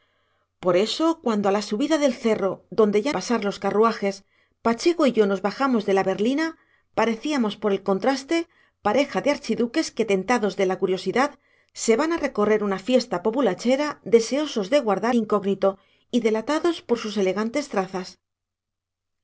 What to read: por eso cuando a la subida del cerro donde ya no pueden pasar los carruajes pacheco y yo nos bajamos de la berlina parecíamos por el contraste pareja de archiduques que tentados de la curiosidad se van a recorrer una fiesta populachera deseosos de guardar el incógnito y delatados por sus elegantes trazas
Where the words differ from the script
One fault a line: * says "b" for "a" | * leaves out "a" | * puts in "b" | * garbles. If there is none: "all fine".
* leaves out "no pueden"
* leaves out "el"